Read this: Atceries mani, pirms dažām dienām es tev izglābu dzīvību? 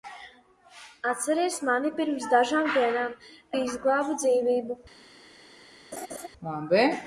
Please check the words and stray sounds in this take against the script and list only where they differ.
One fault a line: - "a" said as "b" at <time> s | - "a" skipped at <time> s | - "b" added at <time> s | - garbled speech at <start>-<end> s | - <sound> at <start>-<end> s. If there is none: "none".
- "es tev" skipped at 3.1 s
- laugh at 5.9-6.3 s